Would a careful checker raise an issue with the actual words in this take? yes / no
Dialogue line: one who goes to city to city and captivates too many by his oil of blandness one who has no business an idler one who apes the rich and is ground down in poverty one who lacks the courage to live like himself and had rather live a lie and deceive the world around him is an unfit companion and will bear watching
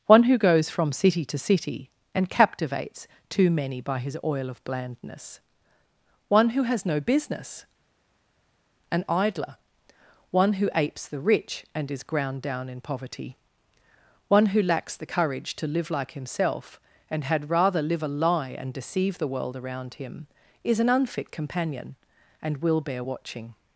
yes